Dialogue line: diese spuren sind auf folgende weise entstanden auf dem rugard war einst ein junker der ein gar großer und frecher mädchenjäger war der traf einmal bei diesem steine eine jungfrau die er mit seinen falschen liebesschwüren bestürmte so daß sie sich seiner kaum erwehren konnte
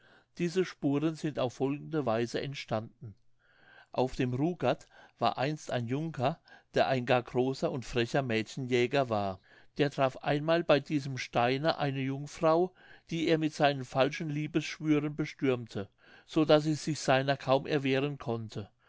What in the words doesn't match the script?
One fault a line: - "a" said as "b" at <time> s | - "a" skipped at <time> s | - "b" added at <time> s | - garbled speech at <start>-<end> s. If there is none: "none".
none